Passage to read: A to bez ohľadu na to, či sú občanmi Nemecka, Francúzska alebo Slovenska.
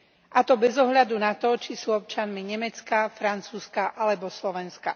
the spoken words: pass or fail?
pass